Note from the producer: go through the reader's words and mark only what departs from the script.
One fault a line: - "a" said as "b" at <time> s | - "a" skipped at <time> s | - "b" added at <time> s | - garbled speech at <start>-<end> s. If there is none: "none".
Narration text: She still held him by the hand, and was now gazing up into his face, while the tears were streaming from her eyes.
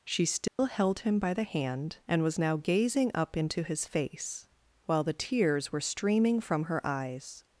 none